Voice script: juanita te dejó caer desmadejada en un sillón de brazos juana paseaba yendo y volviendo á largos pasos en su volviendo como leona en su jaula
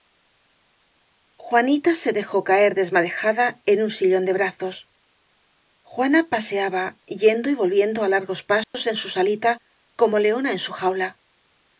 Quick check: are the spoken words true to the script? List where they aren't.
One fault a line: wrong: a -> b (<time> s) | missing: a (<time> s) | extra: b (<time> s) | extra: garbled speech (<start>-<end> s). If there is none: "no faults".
wrong: te -> se (1.9 s)
wrong: volviendo -> salita (9.1 s)